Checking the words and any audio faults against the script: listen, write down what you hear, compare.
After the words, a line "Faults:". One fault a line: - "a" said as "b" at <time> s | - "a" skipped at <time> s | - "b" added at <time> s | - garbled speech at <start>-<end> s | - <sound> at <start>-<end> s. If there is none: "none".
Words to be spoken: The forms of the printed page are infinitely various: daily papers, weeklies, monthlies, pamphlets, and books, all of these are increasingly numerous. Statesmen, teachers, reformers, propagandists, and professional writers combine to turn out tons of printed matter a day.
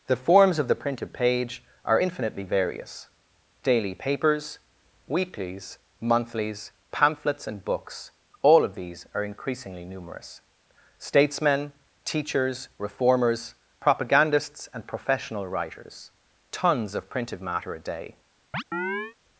The forms of the printed page are infinitely various: daily papers, weeklies, monthlies, pamphlets, and books, all of these are increasingly numerous. Statesmen, teachers, reformers, propagandists, and professional writers tons of printed matter a day.
Faults:
- "combine to turn out" skipped at 16.1 s
- chirp at 18.5-19.2 s